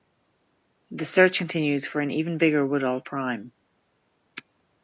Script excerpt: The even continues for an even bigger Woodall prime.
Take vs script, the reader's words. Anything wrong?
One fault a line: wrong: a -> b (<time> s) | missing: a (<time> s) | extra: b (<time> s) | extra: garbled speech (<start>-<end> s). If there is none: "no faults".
wrong: even -> search (1.1 s)